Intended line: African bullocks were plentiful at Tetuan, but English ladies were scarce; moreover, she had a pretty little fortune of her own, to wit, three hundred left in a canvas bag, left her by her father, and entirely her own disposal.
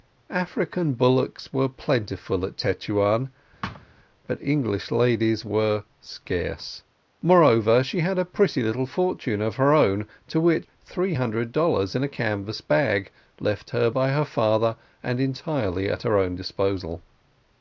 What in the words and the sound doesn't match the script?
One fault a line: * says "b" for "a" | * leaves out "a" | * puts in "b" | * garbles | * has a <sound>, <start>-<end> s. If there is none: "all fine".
* has a thud, 3.6-3.9 s
* says "dollars" for "left"
* puts in "at"